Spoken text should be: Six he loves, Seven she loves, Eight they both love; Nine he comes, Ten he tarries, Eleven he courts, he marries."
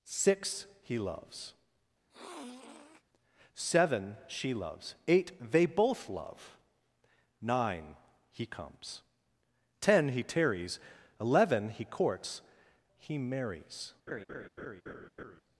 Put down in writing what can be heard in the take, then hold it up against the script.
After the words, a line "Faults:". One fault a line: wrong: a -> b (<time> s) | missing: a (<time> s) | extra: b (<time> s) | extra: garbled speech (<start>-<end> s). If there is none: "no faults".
Six he loves, Seven she loves, Eight they both love; Nine he comes, Ten he tarries, Eleven he courts, he marries."
Faults:
no faults